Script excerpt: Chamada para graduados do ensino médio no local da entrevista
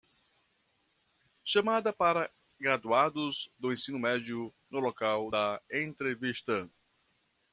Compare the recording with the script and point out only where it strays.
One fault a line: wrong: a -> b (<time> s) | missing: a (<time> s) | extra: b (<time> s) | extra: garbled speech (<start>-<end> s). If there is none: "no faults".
no faults